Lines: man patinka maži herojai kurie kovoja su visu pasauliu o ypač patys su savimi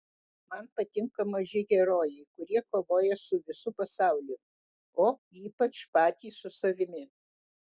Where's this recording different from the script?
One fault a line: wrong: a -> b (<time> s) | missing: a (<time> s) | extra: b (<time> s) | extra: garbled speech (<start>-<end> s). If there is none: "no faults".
no faults